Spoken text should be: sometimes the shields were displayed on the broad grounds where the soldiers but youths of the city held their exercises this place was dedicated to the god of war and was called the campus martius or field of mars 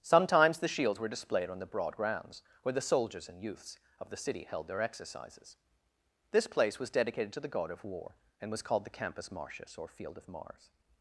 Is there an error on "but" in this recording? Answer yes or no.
yes